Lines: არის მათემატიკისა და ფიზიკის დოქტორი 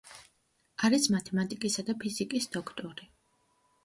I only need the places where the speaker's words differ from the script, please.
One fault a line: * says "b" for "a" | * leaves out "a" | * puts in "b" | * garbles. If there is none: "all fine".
all fine